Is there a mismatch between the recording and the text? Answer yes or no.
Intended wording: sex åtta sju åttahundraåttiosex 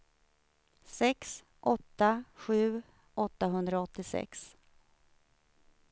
no